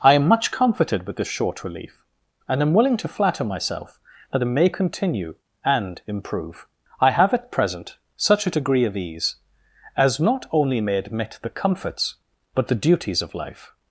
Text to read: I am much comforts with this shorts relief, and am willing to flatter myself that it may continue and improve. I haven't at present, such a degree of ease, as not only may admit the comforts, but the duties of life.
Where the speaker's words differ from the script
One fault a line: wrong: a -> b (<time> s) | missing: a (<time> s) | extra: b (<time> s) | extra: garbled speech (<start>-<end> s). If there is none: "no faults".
wrong: comforts -> comforted (0.5 s)
wrong: shorts -> short (1.3 s)
wrong: haven't -> have (7.1 s)